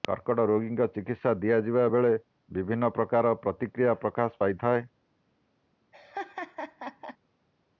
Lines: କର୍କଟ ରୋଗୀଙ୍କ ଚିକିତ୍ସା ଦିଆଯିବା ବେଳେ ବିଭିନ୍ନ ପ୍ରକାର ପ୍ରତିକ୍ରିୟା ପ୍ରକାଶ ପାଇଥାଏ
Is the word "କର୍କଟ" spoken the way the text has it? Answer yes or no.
yes